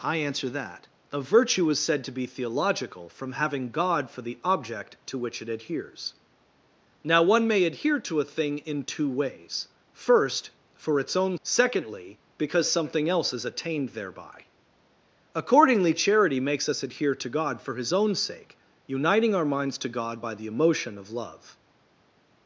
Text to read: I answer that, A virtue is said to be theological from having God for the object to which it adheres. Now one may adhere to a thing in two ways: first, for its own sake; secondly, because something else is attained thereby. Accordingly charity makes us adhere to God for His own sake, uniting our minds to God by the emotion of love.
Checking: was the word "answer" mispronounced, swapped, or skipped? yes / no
no